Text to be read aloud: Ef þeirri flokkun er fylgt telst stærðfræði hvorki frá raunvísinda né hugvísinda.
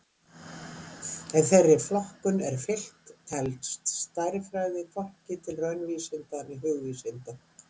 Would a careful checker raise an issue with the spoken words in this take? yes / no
yes